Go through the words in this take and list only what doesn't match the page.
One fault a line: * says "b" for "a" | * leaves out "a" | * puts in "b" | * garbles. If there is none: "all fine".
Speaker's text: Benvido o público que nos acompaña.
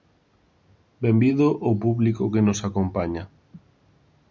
all fine